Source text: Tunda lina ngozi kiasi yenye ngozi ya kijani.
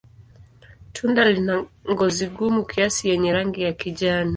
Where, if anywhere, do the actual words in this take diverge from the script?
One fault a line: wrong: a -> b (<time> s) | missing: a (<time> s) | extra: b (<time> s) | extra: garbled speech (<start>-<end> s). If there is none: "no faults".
extra: gumu (2.3 s)
wrong: ngozi -> rangi (3.3 s)